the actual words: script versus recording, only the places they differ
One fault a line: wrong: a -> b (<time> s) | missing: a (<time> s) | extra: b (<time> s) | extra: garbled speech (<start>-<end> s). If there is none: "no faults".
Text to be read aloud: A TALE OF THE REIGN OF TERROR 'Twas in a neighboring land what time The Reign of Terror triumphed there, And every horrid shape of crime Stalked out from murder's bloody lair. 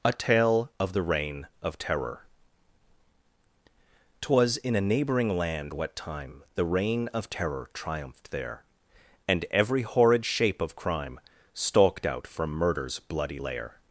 no faults